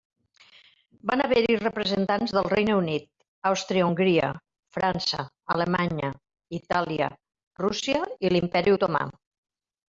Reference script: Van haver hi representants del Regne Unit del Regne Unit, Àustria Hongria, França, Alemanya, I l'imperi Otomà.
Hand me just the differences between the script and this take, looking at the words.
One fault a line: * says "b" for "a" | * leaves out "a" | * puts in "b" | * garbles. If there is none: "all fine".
* leaves out "del Regne Unit"
* puts in "Itàlia Rússia"